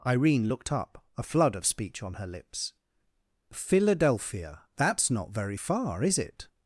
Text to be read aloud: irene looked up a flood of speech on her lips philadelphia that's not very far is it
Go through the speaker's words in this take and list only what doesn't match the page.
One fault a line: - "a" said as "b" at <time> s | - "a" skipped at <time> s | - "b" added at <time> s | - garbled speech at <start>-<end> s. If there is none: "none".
none